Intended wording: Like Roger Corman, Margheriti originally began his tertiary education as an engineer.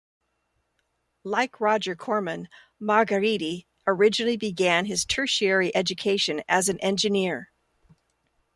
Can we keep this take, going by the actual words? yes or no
yes